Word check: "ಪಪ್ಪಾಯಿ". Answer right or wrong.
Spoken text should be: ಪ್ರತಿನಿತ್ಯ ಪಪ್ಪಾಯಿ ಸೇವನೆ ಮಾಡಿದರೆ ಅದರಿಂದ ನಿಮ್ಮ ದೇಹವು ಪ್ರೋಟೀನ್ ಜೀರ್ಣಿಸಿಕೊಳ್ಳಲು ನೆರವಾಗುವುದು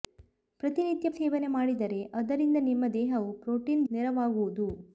wrong